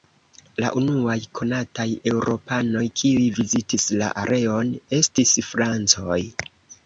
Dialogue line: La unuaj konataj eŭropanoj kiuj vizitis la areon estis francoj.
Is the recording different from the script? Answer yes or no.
no